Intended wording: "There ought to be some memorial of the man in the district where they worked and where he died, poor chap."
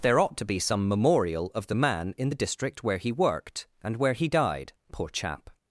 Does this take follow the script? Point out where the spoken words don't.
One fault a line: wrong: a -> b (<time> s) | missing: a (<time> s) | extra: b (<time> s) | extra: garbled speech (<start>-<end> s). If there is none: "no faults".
wrong: they -> he (3.0 s)